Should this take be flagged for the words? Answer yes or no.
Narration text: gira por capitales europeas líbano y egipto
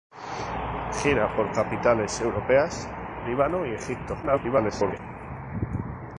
yes